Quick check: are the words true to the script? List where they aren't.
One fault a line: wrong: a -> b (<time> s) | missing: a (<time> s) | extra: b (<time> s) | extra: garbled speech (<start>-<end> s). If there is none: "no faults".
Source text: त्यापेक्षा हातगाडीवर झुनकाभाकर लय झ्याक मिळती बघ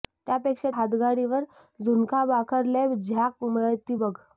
no faults